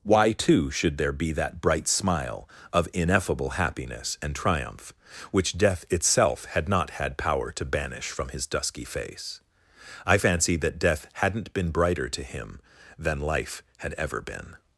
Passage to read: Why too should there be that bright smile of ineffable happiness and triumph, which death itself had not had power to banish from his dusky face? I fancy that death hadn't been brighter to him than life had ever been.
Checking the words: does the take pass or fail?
pass